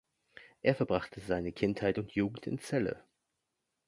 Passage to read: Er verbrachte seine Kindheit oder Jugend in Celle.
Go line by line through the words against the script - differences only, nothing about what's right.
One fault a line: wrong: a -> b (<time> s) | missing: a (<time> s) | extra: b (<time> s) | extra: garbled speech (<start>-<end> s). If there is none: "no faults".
wrong: oder -> und (2.0 s)